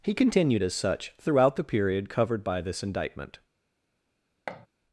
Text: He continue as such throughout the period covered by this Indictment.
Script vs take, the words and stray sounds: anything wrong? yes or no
yes